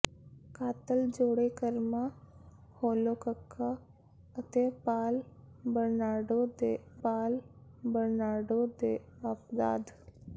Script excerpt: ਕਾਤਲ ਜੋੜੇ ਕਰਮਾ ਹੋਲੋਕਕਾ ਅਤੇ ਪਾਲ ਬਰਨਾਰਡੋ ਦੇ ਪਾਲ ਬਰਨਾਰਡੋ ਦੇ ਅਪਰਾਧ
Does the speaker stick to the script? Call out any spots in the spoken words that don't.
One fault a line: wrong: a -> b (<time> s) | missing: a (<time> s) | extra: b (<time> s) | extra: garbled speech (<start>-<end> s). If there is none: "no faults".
no faults